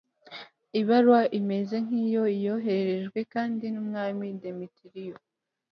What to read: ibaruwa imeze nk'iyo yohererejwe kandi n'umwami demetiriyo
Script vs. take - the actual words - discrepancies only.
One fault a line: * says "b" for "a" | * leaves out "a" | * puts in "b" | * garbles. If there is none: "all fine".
all fine